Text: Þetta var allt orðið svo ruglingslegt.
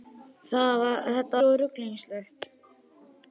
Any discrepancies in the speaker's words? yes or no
yes